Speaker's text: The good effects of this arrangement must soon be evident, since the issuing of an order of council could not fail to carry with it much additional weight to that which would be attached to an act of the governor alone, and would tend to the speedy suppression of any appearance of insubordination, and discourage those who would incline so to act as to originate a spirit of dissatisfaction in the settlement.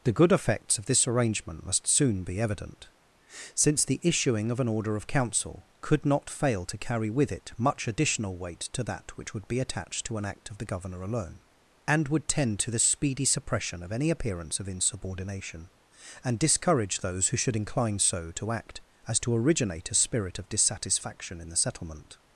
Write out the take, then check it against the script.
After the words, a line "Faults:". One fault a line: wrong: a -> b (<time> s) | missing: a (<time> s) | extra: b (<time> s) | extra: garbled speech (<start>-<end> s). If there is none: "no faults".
The good effects of this arrangement must soon be evident, since the issuing of an order of council could not fail to carry with it much additional weight to that which would be attached to an act of the governor alone, and would tend to the speedy suppression of any appearance of insubordination, and discourage those who should incline so to act as to originate a spirit of dissatisfaction in the settlement.
Faults:
wrong: would -> should (17.4 s)